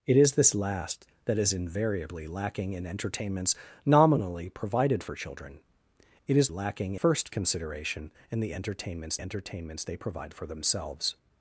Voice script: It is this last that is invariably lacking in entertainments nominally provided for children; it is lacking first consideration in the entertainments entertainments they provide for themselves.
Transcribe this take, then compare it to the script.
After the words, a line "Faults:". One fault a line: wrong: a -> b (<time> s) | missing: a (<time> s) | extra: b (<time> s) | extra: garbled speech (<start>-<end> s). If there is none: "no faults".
It is this last that is invariably lacking in entertainments nominally provided for children; it is lacking first consideration in the entertainments entertainments they provide for themselves.
Faults:
no faults